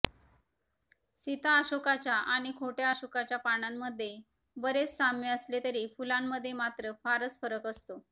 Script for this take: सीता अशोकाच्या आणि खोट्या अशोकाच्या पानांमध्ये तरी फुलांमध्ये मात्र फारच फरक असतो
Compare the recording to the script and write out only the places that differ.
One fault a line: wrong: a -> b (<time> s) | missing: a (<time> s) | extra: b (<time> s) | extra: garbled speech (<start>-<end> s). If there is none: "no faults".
extra: बरेच साम्य असले (4.6 s)